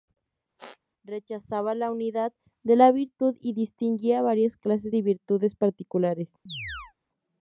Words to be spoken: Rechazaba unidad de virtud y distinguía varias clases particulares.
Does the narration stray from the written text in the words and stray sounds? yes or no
yes